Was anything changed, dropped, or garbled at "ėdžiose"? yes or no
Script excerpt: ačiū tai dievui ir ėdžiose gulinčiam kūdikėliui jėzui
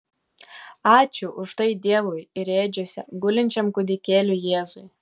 no